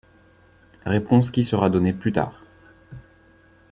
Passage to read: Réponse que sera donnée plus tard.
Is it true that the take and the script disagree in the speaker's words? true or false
true